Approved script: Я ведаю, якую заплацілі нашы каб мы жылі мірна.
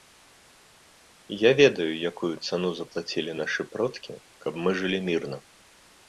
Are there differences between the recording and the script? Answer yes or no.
yes